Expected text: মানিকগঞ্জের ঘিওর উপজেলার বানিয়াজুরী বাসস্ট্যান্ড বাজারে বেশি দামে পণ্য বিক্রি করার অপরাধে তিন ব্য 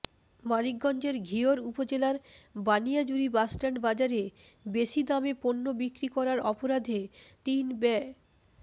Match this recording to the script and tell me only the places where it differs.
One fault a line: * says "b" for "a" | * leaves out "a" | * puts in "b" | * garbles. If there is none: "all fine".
all fine